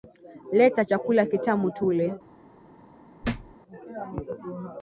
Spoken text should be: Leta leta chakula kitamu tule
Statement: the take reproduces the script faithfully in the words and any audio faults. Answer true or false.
false